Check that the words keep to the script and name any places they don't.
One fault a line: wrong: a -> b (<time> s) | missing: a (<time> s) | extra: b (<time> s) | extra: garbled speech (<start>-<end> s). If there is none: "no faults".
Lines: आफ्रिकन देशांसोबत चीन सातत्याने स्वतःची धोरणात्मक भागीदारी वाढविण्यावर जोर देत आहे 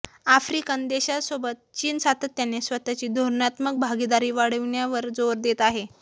no faults